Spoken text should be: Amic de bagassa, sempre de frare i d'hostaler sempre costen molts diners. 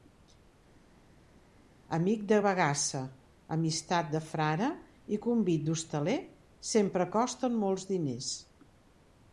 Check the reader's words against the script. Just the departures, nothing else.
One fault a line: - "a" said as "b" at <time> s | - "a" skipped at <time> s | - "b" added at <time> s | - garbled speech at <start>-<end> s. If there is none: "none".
- "sempre" said as "amistat" at 3.6 s
- "convit" added at 5.3 s